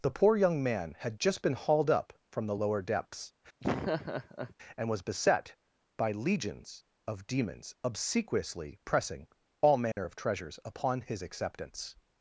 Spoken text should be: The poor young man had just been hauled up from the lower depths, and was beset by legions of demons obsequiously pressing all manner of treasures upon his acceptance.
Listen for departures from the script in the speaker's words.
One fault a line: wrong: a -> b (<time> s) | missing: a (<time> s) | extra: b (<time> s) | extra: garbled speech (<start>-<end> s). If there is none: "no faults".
no faults